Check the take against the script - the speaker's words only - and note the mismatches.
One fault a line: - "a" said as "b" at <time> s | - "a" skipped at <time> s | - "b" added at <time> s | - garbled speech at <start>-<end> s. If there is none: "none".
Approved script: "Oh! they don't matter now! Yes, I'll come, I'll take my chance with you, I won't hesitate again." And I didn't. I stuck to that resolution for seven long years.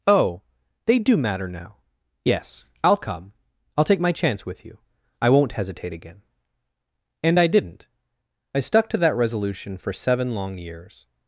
- "don't" said as "do" at 1.0 s